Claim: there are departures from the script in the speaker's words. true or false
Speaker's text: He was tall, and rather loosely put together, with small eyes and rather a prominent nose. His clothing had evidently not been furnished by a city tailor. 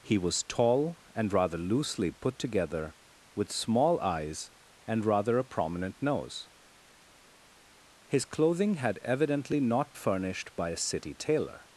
true